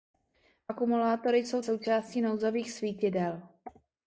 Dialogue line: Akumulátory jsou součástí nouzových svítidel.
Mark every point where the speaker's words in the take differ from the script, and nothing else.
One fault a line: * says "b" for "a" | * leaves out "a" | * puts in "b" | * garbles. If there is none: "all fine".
all fine